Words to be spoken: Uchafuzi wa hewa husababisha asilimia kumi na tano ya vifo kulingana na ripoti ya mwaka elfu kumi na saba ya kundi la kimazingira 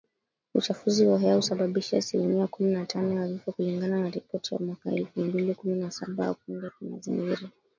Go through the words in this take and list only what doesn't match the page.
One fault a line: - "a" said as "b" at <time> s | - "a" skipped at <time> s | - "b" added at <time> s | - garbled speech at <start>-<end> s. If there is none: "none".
- "mbili" added at 5.2 s